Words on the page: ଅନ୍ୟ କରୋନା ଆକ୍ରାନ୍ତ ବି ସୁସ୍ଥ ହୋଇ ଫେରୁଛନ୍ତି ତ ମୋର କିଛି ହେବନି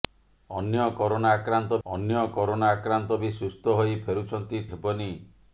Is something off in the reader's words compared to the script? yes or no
yes